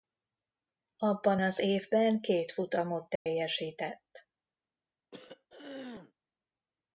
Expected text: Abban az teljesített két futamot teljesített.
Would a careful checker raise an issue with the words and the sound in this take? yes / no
yes